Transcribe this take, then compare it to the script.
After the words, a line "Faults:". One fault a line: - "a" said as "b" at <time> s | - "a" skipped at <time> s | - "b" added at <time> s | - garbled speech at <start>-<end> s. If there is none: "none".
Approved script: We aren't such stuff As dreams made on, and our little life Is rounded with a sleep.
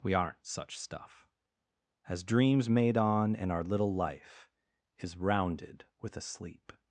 We aren't such stuff As dreams made on, and our little life Is rounded with a sleep.
Faults:
none